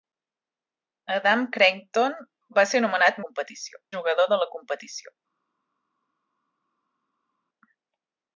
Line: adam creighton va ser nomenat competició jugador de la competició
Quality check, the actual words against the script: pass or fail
pass